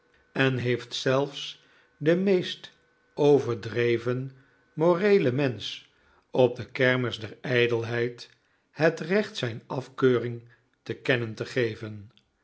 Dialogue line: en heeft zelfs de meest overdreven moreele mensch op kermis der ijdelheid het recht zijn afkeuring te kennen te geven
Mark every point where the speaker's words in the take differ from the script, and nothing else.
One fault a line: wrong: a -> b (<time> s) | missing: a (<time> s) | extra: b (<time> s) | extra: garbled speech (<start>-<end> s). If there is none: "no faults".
extra: de (6.5 s)